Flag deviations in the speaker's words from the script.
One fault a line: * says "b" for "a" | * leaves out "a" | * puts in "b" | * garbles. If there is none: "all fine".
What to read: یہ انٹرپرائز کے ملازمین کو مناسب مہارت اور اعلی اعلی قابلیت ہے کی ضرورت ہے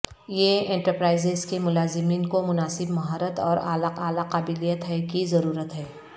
all fine